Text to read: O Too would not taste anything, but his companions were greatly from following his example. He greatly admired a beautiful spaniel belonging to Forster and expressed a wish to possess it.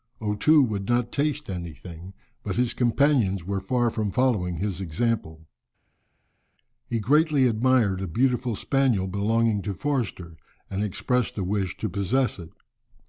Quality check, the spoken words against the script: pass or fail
fail